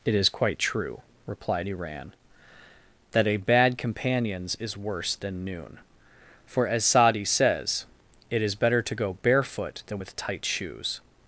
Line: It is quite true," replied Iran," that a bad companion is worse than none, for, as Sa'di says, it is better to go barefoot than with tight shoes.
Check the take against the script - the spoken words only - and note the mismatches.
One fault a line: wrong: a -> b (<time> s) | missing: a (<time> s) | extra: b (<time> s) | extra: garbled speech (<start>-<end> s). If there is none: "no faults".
wrong: companion -> companions (3.8 s)
wrong: none -> noon (5.4 s)